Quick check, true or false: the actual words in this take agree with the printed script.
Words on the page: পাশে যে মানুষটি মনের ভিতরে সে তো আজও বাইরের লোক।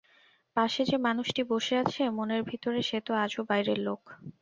false